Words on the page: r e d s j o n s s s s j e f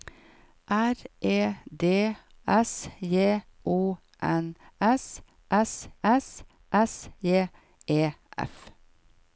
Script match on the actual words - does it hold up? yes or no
yes